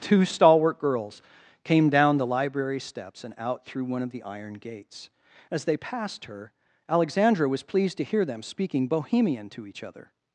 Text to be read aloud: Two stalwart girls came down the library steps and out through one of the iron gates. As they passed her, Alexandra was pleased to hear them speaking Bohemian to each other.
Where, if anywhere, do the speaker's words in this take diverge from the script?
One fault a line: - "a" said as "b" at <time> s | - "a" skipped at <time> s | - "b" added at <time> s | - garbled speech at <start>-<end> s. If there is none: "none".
none